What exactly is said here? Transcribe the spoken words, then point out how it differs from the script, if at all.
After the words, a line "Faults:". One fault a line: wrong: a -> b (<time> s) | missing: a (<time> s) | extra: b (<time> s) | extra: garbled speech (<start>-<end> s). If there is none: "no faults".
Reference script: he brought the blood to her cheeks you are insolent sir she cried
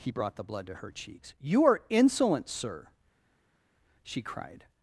he brought the blood to her cheeks you are insolent sir she cried
Faults:
no faults